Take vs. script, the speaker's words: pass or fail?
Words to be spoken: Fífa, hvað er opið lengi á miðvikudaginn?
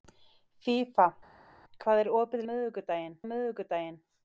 fail